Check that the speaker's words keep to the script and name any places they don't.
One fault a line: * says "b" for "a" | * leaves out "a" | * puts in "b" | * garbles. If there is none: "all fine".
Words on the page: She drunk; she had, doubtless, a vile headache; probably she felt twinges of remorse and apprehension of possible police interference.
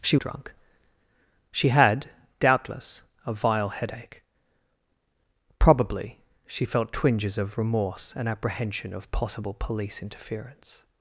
all fine